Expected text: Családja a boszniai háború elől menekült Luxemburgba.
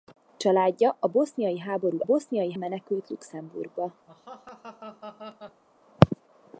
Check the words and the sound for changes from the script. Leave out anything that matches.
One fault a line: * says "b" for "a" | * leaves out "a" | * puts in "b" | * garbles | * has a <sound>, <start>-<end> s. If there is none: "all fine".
* says "boszniai" for "elől"
* has a laugh, 4.1-5.6 s